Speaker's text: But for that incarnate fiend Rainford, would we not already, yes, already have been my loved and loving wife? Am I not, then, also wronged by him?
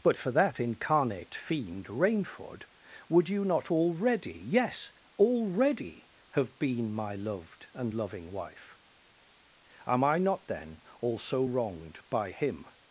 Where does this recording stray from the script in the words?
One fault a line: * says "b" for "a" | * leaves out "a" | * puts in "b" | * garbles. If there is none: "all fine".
* says "you" for "we"